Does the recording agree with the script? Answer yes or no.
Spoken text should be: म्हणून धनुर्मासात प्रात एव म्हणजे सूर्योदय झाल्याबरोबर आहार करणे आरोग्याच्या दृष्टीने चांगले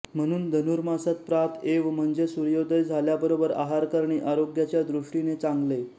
yes